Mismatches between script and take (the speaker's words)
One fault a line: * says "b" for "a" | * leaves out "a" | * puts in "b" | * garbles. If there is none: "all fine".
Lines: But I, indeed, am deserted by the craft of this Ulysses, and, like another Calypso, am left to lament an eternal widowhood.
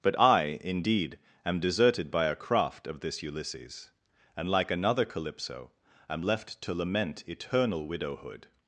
* says "a" for "the"
* leaves out "an"